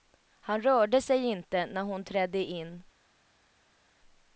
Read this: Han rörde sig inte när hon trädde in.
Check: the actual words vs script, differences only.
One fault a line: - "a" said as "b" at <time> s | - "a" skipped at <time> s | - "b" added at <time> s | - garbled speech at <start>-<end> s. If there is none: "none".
none